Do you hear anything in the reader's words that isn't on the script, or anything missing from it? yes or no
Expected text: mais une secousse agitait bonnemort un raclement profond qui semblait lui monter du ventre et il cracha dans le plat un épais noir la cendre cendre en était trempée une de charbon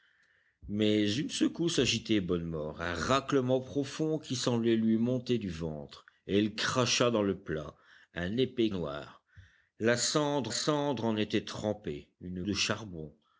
no